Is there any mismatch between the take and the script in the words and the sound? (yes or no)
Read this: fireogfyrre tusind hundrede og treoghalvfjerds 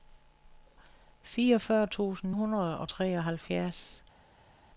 no